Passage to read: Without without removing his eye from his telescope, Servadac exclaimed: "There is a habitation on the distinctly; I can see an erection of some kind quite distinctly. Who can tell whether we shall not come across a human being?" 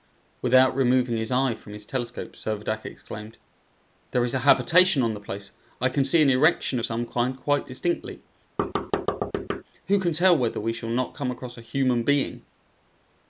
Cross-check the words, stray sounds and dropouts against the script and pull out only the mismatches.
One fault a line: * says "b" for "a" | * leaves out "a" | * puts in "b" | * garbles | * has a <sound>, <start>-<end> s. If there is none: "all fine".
* leaves out "without"
* says "place" for "distinctly"
* has a thud, 8.6-9.6 s